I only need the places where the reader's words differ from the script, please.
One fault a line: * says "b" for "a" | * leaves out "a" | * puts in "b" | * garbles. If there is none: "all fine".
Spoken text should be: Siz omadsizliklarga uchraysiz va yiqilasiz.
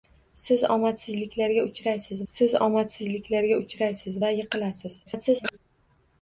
* puts in "siz omadsizliklarga uchraysiz"
* garbles